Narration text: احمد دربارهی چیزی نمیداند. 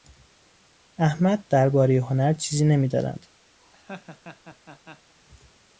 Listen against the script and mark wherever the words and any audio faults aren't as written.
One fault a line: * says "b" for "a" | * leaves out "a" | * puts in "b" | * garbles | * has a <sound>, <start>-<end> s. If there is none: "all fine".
* puts in "هنر"
* has a laugh, 3.6-5.1 s